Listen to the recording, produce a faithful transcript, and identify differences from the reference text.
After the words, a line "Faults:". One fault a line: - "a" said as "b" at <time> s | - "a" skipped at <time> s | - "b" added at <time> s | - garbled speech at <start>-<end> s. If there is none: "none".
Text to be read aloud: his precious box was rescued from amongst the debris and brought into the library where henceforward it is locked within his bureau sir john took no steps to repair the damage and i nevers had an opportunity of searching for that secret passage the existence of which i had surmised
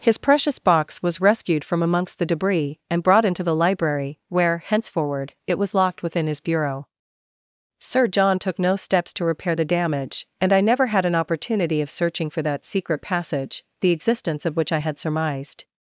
his precious box was rescued from amongst the debris and brought into the library where henceforward it was locked within his bureau sir john took no steps to repair the damage and i never had an opportunity of searching for that secret passage the existence of which i had surmised
Faults:
- "is" said as "was" at 5.6 s
- "nevers" said as "never" at 10.6 s